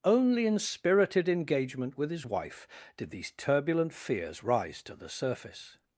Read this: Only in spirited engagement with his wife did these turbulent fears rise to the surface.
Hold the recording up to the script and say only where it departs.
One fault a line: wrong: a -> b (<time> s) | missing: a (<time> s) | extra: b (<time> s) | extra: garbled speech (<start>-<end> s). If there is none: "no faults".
no faults